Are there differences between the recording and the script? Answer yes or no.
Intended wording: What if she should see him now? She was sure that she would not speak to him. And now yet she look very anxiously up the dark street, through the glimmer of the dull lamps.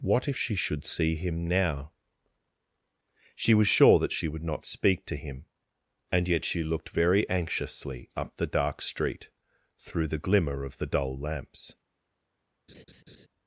yes